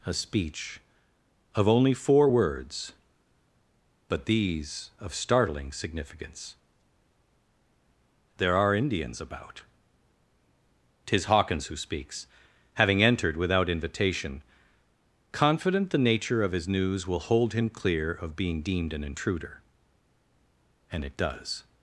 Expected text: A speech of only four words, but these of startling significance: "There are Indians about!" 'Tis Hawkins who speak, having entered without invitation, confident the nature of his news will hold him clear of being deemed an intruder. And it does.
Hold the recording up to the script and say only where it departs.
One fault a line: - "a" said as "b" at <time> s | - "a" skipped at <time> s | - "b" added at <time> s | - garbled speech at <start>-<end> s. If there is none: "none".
- "speak" said as "speaks" at 11.7 s